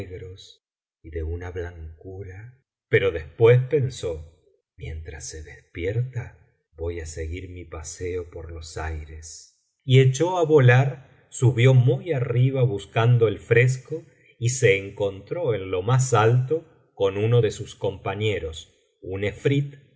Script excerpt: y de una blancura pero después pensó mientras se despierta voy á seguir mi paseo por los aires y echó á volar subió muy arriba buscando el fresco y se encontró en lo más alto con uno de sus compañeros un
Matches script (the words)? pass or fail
pass